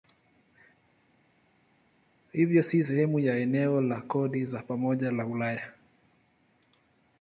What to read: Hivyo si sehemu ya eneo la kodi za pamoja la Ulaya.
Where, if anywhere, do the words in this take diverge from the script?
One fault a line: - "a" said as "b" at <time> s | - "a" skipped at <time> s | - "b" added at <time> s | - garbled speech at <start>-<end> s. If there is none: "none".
none